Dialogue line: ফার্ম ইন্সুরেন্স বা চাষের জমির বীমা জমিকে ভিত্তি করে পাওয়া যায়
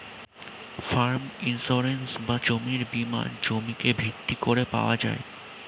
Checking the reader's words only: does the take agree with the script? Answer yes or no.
no